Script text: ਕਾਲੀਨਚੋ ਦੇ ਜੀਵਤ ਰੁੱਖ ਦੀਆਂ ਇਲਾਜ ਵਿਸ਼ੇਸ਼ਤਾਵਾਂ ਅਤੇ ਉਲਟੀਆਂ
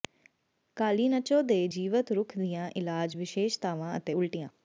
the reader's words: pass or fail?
pass